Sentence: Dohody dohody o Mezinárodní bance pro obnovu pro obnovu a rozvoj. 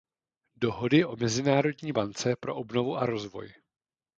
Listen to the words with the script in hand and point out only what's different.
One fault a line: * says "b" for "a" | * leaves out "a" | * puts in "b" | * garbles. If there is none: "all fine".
* leaves out "dohody"
* leaves out "pro obnovu"